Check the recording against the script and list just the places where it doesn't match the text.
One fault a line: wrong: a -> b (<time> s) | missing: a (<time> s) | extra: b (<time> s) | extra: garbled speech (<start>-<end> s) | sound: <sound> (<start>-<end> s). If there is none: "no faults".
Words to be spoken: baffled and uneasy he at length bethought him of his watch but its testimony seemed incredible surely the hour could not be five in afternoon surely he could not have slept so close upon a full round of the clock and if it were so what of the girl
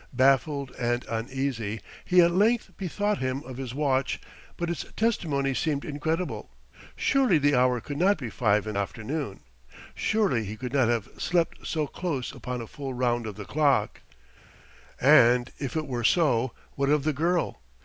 no faults